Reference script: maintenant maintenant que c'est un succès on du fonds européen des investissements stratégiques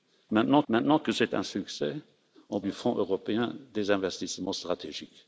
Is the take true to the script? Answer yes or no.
yes